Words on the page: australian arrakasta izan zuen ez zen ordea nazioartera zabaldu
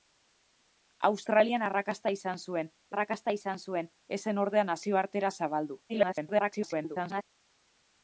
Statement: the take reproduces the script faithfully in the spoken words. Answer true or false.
false